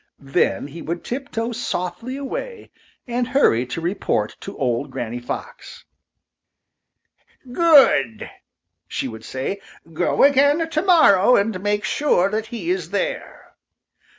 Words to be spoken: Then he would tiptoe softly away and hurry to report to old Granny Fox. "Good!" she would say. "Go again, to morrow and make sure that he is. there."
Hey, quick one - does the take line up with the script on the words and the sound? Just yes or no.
yes